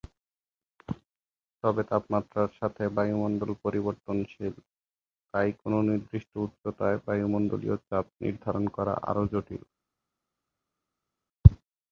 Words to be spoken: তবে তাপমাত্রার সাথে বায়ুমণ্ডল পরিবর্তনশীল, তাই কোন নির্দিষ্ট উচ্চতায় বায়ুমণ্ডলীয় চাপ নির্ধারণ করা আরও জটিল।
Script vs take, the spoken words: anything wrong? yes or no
no